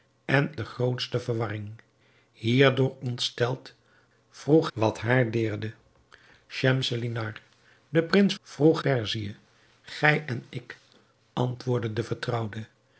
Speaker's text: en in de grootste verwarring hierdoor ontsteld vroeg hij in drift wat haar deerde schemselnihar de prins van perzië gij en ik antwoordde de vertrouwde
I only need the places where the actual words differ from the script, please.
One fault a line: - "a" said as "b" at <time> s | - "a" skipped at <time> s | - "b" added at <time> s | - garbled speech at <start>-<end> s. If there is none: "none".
- "in" skipped at 0.5 s
- "hij in drift" skipped at 4.7 s
- "van" said as "vroeg" at 8.4 s